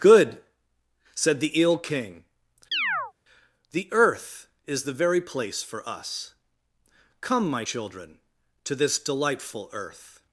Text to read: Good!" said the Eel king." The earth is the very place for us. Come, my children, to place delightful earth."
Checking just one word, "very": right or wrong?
right